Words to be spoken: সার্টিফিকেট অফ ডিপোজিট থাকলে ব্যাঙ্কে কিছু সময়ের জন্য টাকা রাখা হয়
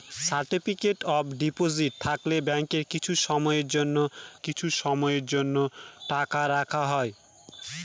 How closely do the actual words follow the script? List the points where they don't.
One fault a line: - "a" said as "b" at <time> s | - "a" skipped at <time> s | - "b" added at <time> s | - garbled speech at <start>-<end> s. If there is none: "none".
- "কিছু সময়ের জন্য" added at 4.4 s